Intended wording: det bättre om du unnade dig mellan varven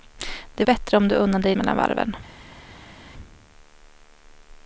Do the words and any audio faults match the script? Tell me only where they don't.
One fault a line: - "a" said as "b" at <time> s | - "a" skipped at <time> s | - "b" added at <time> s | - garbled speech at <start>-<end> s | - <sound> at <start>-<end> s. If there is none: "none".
none